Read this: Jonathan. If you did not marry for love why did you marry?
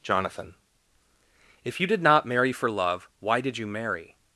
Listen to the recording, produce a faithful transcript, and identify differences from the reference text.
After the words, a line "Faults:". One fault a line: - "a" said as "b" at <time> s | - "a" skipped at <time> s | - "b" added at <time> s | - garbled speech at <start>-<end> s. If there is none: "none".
Jonathan. If you did not marry for love why did you marry?
Faults:
none